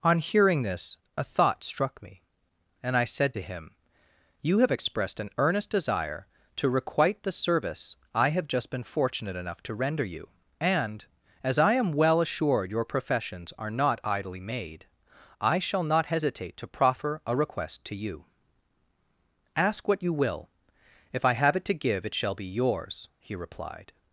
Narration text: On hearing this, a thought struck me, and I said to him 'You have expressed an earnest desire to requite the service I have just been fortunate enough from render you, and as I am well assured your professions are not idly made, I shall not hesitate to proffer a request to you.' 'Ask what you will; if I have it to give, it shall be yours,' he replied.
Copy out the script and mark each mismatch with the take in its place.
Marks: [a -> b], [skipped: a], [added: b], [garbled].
On hearing this, a thought struck me, and I said to him 'You have expressed an earnest desire to requite the service I have just been fortunate enough [from -> to] render you, and as I am well assured your professions are not idly made, I shall not hesitate to proffer a request to you.' 'Ask what you will; if I have it to give, it shall be yours,' he replied.